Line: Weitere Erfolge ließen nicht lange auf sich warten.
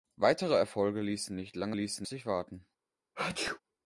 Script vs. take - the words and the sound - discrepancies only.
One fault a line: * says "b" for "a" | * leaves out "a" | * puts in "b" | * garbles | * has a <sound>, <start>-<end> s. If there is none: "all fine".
* says "ließen" for "auf"
* has a sneeze, 3.1-3.6 s